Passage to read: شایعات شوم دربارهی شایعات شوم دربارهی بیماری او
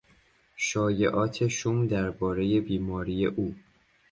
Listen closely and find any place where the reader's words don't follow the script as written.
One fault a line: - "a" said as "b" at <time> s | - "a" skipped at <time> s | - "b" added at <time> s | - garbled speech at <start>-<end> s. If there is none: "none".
- "شایعات شوم دربارهی" skipped at 2.6 s